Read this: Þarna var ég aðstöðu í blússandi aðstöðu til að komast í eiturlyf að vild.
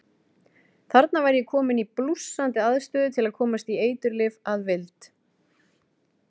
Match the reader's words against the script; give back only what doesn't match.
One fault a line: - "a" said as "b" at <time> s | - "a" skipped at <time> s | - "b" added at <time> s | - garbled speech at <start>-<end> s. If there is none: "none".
- "aðstöðu" said as "kominn" at 1.5 s